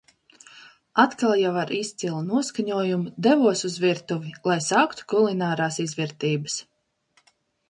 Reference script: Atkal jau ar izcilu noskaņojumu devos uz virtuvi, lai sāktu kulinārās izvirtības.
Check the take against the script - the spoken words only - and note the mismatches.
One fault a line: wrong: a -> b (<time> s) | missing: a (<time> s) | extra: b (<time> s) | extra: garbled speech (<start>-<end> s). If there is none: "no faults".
no faults